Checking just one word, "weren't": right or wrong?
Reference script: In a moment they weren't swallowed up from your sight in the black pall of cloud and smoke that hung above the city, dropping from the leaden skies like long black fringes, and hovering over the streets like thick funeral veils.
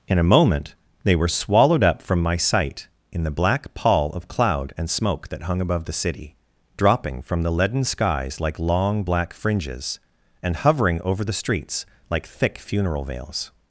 wrong